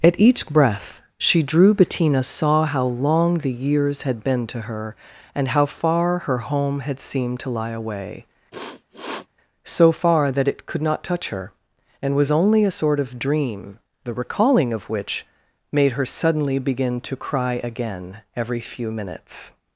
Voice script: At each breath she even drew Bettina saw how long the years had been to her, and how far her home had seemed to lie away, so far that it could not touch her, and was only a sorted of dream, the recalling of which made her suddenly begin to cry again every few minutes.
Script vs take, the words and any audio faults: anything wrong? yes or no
yes